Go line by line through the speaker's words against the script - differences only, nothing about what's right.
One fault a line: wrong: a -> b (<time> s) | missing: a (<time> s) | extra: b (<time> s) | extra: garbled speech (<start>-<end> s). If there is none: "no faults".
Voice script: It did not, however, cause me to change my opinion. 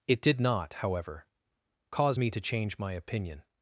no faults